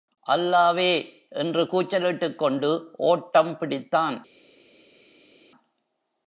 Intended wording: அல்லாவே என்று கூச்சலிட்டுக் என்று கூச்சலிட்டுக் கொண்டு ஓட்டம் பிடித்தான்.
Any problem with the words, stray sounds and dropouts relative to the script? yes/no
yes